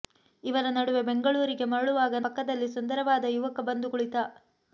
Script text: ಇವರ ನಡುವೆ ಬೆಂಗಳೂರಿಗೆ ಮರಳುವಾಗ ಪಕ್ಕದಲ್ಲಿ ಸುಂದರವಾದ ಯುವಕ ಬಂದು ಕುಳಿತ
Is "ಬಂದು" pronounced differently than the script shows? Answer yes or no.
no